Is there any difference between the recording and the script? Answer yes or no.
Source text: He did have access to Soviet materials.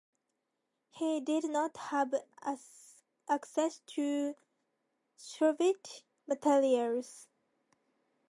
yes